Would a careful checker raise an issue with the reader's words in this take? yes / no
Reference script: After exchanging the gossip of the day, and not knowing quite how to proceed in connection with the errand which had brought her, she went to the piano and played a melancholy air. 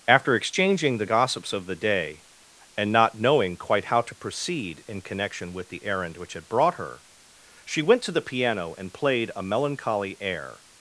yes